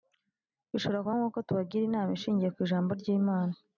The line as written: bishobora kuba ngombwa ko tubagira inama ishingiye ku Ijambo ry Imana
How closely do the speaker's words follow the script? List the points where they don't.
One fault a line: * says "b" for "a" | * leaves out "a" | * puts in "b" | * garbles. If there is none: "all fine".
all fine